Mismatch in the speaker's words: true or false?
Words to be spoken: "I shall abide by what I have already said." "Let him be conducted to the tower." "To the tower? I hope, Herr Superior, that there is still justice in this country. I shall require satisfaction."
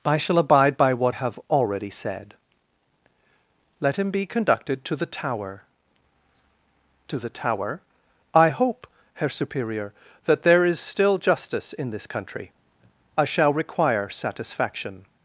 true